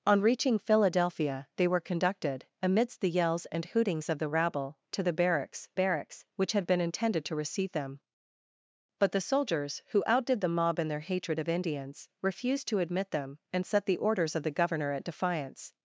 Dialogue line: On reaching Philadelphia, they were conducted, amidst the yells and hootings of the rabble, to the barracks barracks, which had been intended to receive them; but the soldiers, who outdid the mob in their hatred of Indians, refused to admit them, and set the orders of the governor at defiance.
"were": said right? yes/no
yes